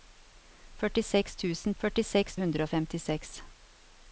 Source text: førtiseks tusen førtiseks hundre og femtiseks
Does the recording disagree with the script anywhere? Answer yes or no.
no